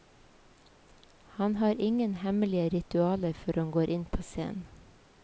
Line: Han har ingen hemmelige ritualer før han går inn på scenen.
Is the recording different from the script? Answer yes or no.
no